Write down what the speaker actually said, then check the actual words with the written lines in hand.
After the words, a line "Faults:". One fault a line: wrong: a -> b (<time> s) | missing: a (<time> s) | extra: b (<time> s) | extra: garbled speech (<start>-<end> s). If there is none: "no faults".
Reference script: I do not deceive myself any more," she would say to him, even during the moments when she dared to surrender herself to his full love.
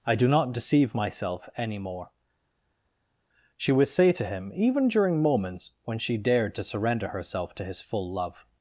I do not deceive myself any more," she would say to him, even during moments when she dared to surrender herself to his full love.
Faults:
missing: the (5.2 s)